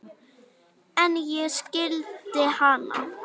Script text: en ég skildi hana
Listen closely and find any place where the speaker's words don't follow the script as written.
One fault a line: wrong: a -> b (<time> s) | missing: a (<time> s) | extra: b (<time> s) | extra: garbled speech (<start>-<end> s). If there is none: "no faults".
no faults